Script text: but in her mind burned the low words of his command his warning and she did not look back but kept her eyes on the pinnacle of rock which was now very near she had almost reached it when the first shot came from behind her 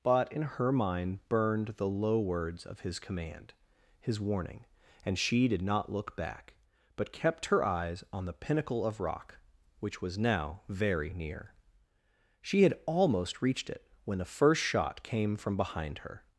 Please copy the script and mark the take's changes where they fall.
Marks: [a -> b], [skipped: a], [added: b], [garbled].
but in her mind burned the low words of his command his warning and she did not look back but kept her eyes on the pinnacle of rock which was now very near she had almost reached it when the first shot came from behind her